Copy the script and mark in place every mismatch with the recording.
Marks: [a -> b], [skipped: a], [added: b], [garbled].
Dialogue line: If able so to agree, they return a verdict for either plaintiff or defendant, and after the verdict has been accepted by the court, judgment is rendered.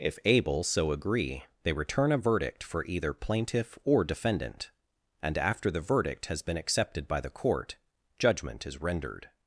If able so [skipped: to] agree, they return a verdict for either plaintiff or defendant, and after the verdict has been accepted by the court, judgment is rendered.